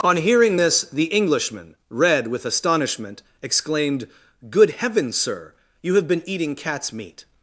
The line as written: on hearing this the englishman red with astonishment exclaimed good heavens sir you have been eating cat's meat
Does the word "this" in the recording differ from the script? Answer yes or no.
no